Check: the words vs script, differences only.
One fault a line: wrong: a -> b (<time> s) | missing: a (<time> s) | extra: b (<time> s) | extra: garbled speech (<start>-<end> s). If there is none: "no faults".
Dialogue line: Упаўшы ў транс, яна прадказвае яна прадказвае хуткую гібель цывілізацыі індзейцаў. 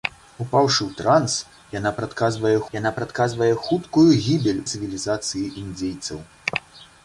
no faults